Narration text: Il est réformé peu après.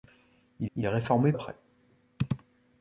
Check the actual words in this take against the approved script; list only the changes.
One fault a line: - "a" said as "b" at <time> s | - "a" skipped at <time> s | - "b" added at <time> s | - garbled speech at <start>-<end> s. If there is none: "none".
- "il" added at 0.8 s
- "peu" skipped at 1.3 s